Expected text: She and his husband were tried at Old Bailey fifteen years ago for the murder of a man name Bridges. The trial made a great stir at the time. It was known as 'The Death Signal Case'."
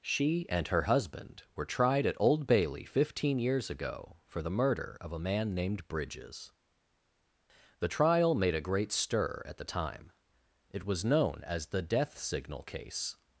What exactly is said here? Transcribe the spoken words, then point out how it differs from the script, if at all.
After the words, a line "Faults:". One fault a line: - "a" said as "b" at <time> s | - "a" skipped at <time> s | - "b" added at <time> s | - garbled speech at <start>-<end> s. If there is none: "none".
She and her husband were tried at Old Bailey fifteen years ago for the murder of a man named Bridges. The trial made a great stir at the time. It was known as 'The Death Signal Case'."
Faults:
- "his" said as "her" at 0.7 s
- "name" said as "named" at 5.5 s